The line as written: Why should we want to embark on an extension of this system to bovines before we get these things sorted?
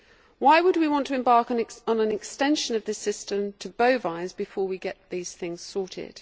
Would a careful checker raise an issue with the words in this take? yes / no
yes